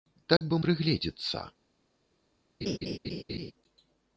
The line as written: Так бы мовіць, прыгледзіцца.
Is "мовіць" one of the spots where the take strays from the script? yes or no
yes